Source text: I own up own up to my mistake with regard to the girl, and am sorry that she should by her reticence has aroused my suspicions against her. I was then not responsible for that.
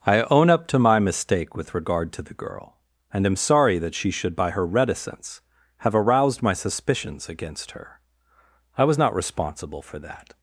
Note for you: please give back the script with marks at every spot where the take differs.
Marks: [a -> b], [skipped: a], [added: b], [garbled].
I own up [skipped: own up] to my mistake with regard to the girl, and am sorry that she should by her reticence [has -> have] aroused my suspicions against her. I was [skipped: then] not responsible for that.